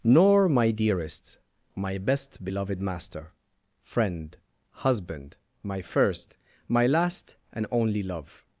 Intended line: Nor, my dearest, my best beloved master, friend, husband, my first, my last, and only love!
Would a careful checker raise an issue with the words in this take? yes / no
no